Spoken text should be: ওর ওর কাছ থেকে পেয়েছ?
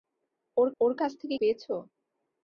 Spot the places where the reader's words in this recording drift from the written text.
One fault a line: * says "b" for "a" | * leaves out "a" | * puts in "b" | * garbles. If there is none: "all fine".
all fine